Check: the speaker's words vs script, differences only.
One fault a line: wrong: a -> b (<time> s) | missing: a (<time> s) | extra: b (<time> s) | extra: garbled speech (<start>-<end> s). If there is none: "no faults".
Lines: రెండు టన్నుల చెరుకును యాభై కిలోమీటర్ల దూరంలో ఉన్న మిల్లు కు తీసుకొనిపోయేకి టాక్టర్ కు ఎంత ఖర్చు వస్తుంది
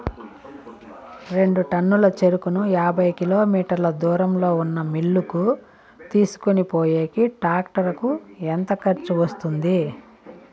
no faults